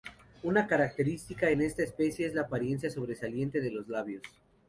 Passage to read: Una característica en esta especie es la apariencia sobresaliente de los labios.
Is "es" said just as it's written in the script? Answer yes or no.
yes